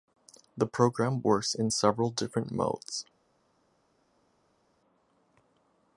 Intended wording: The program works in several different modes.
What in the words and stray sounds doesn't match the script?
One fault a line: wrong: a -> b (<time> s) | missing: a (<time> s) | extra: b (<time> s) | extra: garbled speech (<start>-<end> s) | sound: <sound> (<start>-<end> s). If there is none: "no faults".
no faults